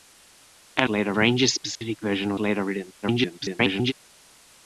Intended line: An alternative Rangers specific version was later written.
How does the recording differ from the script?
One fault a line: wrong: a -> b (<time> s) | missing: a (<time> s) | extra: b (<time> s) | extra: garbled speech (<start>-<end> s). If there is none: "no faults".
wrong: alternative -> later (0.9 s)
missing: was (2.3 s)
extra: garbled speech (3.0-3.9 s)